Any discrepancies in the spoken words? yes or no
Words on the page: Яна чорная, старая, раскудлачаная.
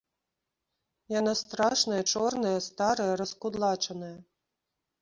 yes